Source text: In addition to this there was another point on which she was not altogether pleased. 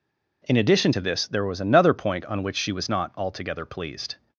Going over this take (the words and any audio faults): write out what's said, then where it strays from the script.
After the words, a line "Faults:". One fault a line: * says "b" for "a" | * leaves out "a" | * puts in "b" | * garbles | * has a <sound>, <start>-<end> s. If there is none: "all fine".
In addition to this there was another point on which she was not altogether pleased.
Faults:
all fine